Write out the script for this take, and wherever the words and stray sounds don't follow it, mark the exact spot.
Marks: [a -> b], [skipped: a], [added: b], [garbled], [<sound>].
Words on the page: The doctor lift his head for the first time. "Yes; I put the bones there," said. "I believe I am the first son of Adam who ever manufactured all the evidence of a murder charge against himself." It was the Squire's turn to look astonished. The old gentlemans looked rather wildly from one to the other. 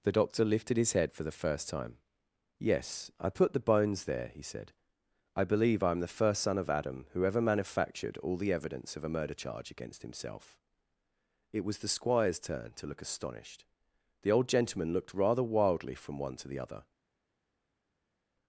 The doctor [lift -> lifted] his head for the first time. "Yes; I put the bones there," [added: he] said. "I believe I am the first son of Adam who ever manufactured all the evidence of a murder charge against himself." It was the Squire's turn to look astonished. The old [gentlemans -> gentleman] looked rather wildly from one to the other.